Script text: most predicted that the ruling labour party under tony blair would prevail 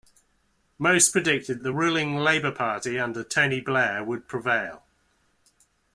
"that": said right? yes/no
no